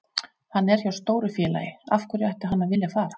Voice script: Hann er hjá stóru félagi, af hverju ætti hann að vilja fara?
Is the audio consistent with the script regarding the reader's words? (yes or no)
yes